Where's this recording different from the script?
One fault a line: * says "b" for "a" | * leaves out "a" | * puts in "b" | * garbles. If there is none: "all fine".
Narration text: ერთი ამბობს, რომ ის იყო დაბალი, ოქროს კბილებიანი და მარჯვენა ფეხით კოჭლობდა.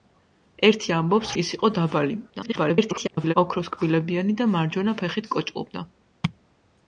* leaves out "რომ"
* garbles